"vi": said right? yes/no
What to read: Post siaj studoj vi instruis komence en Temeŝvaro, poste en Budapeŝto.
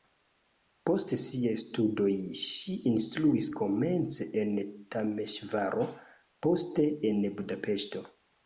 no